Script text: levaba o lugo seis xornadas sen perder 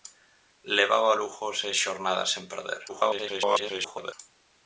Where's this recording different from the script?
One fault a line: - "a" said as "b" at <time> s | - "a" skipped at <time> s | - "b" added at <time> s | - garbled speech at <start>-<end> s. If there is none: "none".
- garbled speech at 2.9-4.1 s